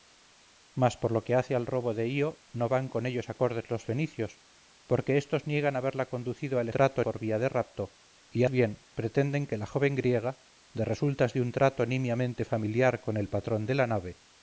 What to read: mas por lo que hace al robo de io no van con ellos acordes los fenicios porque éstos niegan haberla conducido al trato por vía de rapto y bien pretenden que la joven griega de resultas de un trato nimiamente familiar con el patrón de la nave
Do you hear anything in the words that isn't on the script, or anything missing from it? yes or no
no